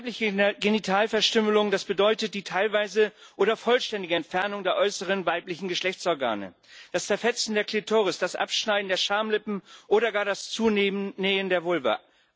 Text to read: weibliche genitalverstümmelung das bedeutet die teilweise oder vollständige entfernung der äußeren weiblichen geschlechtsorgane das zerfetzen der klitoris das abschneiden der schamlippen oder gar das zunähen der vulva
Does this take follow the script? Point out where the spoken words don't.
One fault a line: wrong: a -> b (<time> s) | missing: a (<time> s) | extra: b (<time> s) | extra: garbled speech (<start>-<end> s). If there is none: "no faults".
no faults